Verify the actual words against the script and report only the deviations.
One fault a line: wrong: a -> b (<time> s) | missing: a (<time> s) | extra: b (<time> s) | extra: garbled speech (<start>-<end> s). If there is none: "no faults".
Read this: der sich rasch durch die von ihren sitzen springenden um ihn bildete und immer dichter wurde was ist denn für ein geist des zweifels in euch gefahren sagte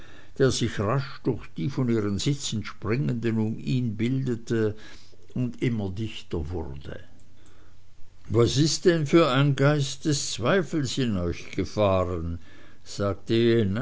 no faults